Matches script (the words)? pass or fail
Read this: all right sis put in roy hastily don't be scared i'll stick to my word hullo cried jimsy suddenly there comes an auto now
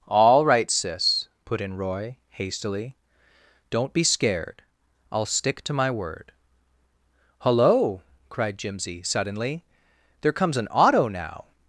pass